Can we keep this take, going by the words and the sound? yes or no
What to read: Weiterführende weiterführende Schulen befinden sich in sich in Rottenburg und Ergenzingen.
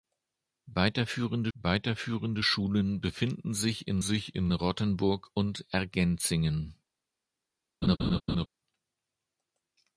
no